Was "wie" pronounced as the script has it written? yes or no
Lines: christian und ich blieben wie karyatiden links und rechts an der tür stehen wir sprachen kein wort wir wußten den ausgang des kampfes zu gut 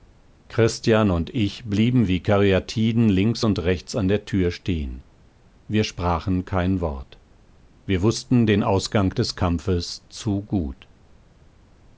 yes